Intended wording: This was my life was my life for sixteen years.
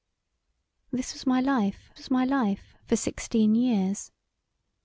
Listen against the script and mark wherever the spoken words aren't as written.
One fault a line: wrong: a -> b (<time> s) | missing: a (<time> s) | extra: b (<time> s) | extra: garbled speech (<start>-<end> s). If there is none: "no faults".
no faults